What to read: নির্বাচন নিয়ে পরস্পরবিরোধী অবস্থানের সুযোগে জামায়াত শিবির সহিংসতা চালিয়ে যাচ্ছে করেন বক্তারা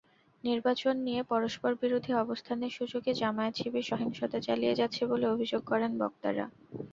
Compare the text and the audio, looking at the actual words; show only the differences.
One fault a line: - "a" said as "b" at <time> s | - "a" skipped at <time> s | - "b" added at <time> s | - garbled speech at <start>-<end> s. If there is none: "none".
- "বলে অভিযোগ" added at 5.1 s